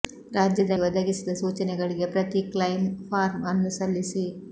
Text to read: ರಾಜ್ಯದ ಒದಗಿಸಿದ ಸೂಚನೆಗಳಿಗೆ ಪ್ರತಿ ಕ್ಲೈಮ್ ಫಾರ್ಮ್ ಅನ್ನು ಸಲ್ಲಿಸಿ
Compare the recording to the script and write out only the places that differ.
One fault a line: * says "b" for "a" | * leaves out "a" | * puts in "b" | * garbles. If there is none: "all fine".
all fine